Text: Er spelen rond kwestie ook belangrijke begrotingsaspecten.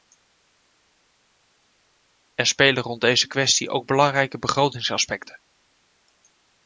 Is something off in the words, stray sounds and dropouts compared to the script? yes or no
yes